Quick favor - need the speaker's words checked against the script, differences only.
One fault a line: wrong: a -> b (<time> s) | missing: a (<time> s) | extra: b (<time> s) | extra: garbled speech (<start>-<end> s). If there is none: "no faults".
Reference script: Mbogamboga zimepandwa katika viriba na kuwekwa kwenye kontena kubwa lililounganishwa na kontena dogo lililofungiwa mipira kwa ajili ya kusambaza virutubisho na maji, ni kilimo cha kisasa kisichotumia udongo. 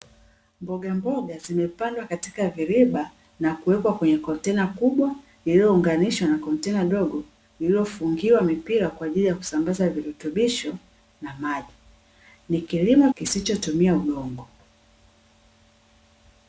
missing: cha kisasa (13.1 s)